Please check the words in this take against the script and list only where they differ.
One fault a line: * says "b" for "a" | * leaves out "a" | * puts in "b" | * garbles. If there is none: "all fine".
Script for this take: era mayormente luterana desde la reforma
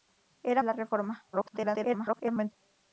* leaves out "mayormente luterana desde"
* garbles